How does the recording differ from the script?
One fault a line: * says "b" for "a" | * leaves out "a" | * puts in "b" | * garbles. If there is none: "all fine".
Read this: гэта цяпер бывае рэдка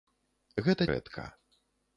* leaves out "цяпер бывае"